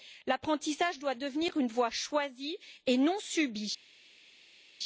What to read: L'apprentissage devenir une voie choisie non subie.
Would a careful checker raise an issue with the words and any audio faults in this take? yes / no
yes